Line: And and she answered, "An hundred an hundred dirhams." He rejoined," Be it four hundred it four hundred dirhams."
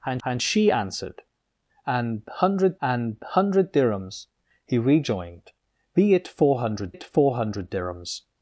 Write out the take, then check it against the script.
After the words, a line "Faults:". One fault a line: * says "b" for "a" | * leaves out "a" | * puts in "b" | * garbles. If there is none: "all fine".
And and she answered, "An hundred an hundred dirhams." He rejoined," Be it four hundred it four hundred dirhams."
Faults:
all fine